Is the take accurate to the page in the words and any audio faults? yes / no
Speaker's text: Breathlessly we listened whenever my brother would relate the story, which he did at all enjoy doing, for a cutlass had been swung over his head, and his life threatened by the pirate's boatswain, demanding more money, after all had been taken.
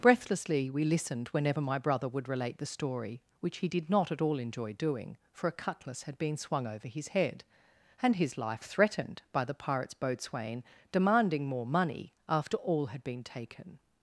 no